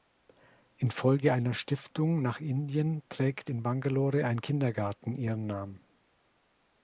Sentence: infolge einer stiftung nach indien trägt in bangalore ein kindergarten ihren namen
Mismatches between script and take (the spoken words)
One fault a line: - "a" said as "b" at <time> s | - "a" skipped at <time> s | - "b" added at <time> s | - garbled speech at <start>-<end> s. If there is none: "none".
none